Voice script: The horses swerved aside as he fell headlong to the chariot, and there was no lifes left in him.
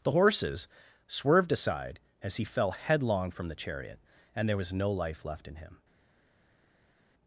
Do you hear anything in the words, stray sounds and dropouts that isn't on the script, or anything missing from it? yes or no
yes